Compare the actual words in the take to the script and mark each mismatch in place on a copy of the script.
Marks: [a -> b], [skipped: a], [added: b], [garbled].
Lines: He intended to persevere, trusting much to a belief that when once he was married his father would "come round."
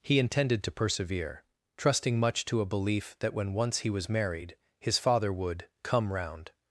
He intended to persevere, trusting much to a belief that when once he was married his father would "come round."